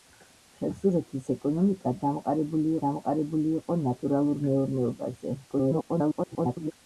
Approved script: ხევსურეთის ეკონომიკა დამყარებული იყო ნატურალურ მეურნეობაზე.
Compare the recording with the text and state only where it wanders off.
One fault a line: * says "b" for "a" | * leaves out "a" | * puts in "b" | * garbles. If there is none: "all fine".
* puts in "დამყარებული"
* garbles